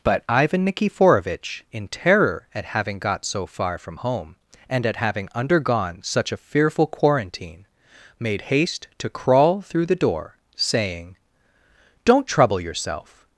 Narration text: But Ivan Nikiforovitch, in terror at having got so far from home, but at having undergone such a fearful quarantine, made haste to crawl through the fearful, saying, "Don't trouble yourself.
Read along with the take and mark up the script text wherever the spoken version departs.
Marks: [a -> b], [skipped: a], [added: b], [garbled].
But Ivan Nikiforovitch, in terror at having got so far from home, [but -> and] at having undergone such a fearful quarantine, made haste to crawl through the [fearful, -> door] saying, "Don't trouble yourself.